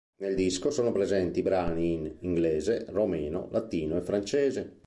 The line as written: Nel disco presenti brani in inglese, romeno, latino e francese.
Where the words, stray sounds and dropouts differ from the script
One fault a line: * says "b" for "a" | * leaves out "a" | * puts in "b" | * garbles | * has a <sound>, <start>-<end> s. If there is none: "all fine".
* puts in "sono"